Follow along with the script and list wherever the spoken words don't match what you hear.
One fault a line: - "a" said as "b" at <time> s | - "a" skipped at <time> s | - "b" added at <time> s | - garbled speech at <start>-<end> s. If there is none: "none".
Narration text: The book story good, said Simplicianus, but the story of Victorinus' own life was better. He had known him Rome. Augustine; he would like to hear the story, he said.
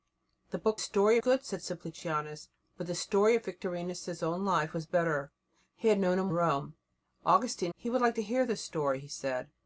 none